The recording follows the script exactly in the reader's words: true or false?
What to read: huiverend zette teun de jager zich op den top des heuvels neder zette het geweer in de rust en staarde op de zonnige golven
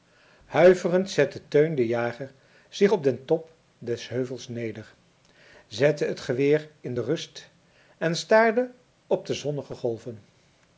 true